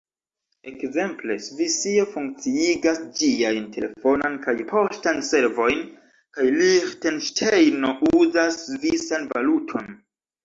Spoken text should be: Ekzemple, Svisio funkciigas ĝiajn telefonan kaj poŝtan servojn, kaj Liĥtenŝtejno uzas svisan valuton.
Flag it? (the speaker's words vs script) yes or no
no